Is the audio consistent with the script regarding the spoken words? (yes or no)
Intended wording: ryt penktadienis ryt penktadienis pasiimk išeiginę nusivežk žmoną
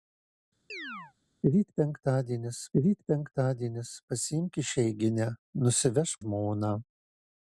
yes